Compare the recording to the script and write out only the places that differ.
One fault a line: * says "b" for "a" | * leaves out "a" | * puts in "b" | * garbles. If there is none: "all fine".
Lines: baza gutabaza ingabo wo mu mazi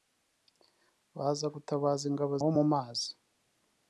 all fine